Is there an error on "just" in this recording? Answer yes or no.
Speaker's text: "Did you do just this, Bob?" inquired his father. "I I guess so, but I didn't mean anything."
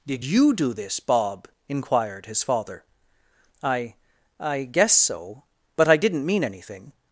yes